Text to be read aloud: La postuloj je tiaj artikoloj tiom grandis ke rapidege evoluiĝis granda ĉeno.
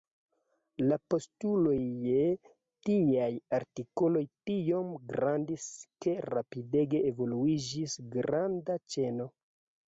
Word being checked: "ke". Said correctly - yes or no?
yes